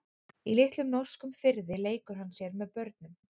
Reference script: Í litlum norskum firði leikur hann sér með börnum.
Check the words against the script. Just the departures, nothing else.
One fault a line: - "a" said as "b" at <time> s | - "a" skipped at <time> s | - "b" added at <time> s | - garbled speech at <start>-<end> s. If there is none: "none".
none